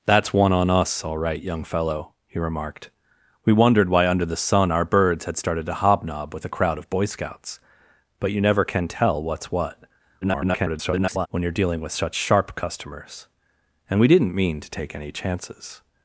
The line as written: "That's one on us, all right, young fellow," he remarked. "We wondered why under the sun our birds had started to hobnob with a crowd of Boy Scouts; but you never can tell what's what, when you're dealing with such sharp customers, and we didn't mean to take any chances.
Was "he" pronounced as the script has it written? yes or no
yes